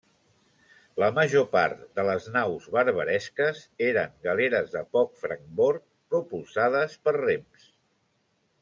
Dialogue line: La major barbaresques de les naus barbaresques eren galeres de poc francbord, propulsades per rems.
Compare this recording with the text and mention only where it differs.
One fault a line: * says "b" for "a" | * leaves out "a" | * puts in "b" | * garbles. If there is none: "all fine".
* says "part" for "barbaresques"